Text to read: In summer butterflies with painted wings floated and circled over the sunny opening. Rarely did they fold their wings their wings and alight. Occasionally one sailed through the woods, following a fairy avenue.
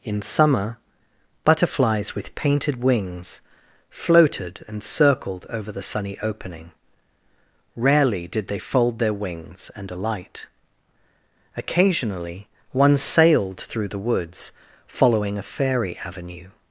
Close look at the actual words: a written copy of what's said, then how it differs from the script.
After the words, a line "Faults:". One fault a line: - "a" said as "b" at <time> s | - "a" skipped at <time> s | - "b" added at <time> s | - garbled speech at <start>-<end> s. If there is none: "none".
In summer butterflies with painted wings floated and circled over the sunny opening. Rarely did they fold their wings and alight. Occasionally one sailed through the woods, following a fairy avenue.
Faults:
- "their wings" skipped at 9.7 s